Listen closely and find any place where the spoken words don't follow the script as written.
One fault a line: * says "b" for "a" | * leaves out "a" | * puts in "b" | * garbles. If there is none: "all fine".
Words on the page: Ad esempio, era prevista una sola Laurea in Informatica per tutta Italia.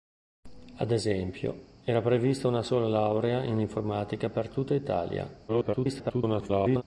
* garbles